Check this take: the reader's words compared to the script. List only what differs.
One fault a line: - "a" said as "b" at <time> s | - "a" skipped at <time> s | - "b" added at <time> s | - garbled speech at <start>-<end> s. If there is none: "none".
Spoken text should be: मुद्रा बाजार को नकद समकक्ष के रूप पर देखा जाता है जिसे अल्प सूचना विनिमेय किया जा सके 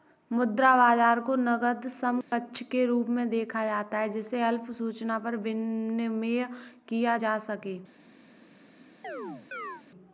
- "पर" said as "में" at 3.1 s
- "पर" added at 5.2 s